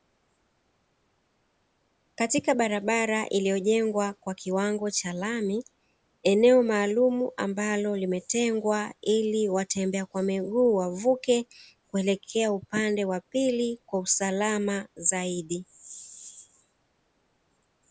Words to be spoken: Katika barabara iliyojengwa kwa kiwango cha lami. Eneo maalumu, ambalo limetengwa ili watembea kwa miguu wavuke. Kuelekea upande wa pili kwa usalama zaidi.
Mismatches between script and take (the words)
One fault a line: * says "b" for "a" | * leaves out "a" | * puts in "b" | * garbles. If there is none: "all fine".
all fine